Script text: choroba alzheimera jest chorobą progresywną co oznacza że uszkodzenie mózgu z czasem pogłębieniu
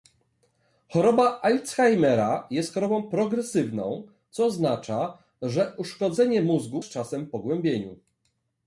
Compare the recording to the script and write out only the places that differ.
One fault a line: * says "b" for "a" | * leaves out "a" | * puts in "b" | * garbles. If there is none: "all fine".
all fine